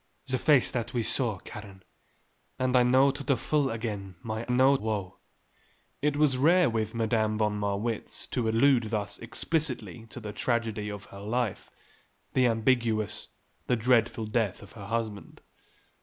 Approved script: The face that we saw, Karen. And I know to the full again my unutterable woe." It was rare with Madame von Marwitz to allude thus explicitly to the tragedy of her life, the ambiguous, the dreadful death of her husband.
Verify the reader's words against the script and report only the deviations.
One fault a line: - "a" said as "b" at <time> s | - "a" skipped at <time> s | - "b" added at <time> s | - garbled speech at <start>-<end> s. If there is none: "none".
- "unutterable" said as "know" at 4.5 s